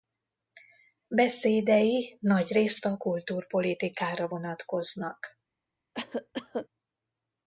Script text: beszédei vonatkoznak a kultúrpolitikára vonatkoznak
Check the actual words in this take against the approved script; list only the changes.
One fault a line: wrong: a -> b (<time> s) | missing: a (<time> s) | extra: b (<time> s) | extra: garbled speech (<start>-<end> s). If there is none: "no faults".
wrong: vonatkoznak -> nagyrészt (2.2 s)